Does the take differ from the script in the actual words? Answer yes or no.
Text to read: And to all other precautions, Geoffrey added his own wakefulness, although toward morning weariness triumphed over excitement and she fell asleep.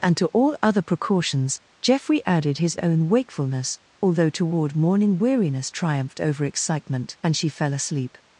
no